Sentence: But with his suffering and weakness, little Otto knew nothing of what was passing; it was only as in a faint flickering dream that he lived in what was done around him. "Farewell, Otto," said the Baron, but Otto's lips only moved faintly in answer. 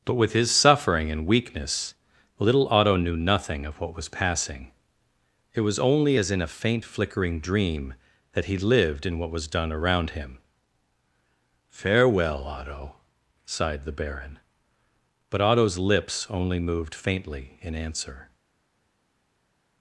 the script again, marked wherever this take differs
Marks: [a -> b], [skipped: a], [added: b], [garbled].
But with his suffering and weakness, little Otto knew nothing of what was passing; it was only as in a faint flickering dream that he lived in what was done around him. "Farewell, Otto," [said -> sighed] the Baron, but Otto's lips only moved faintly in answer.